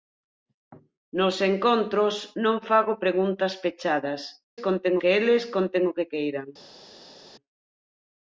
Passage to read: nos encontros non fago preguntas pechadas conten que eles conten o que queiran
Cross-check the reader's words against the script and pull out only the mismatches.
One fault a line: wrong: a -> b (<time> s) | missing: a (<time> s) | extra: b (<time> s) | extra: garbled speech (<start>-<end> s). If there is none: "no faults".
no faults